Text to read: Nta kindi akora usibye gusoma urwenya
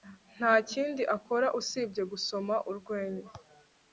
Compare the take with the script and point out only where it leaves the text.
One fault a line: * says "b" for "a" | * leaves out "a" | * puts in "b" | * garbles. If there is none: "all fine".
all fine